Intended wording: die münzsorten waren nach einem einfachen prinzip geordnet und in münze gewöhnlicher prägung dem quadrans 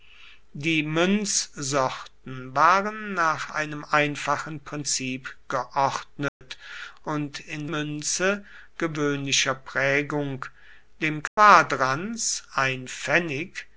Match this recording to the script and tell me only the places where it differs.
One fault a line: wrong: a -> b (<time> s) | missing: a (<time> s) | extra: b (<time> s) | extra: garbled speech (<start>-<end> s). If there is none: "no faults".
no faults